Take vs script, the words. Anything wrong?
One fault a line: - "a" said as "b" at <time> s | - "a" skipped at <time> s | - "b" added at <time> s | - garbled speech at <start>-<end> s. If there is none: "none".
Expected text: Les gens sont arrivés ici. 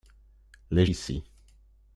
- "gens sont arrivés" skipped at 0.9 s